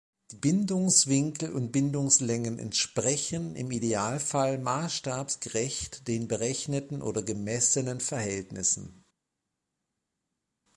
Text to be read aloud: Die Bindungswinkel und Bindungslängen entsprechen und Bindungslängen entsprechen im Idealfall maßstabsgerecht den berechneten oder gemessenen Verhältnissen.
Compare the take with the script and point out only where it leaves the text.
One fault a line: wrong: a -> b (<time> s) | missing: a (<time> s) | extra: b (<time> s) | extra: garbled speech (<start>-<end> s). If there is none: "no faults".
missing: und Bindungslängen entsprechen (3.5 s)